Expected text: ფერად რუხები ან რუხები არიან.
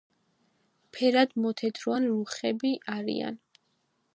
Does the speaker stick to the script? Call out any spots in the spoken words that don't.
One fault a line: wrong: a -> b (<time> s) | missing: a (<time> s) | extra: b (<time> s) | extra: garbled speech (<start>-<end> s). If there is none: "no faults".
wrong: რუხები -> მოთეთრო (1.4 s)